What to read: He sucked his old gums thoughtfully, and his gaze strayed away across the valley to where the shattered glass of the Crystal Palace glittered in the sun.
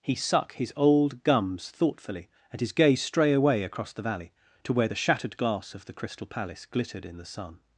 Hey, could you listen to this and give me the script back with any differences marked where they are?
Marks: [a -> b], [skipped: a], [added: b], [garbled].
He [sucked -> suck] his old gums thoughtfully, and his gaze [strayed -> stray] away across the valley to where the shattered glass of the Crystal Palace glittered in the sun.